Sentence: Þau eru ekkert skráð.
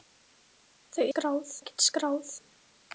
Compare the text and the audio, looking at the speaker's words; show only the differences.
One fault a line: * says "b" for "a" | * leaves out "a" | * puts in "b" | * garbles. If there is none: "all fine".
* says "skráð" for "eru"